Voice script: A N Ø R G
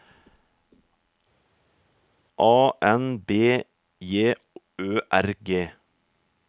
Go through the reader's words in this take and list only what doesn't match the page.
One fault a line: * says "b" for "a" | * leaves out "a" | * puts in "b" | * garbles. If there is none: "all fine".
* puts in "B J"